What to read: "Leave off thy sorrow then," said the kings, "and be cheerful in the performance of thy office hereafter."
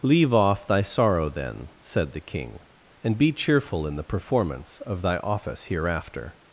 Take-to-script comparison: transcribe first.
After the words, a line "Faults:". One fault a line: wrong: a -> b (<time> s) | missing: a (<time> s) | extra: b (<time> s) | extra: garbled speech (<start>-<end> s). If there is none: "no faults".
"Leave off thy sorrow then," said the king, "and be cheerful in the performance of thy office hereafter."
Faults:
wrong: kings -> king (2.2 s)